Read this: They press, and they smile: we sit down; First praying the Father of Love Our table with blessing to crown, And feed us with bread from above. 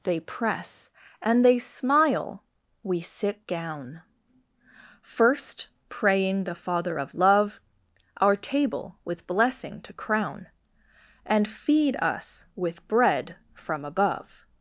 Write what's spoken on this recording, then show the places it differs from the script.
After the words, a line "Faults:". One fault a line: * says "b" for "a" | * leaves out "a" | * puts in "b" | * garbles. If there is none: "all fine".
They press, and they smile: we sit down; First praying the Father of Love Our table with blessing to crown, And feed us with bread from above.
Faults:
all fine